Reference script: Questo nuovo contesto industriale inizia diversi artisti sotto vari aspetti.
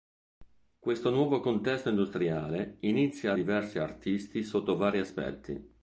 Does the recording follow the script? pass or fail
pass